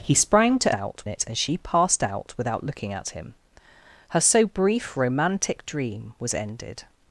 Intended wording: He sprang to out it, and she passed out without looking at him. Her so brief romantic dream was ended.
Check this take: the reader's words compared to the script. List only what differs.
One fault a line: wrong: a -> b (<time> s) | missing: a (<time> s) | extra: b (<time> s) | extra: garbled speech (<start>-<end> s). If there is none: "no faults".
no faults